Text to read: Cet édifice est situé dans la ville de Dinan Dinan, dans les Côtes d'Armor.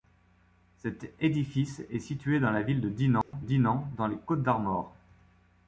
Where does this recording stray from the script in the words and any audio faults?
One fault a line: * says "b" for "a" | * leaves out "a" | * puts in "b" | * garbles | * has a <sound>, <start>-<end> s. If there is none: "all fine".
* has a dropout, 3.2-3.3 s